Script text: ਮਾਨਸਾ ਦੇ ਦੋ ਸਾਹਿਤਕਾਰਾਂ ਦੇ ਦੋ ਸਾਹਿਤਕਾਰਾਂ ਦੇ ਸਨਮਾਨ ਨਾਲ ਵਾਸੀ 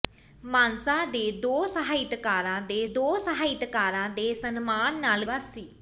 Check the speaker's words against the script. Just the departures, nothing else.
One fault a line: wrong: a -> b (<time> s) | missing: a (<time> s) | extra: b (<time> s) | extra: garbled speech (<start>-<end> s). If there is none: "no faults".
no faults